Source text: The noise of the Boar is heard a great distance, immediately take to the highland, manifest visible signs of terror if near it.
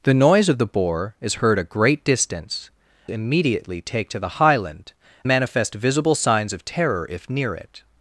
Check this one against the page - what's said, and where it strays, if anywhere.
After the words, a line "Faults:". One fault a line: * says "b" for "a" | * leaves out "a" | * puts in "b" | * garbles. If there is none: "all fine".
The noise of the Boar is heard a great distance, immediately take to the highland, manifest visible signs of terror if near it.
Faults:
all fine